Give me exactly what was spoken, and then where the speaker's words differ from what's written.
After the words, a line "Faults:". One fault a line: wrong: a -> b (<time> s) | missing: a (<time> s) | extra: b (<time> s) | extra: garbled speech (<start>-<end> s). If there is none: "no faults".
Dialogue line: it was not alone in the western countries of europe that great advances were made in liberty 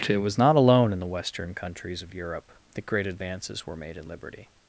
it was not alone in the western countries of europe that great advances were made in liberty
Faults:
no faults